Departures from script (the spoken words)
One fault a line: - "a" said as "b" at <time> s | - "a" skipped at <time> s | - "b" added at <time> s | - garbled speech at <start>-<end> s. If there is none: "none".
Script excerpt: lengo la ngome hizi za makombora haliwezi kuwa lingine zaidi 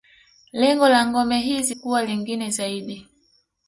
- "za makombora haliwezi" skipped at 1.8 s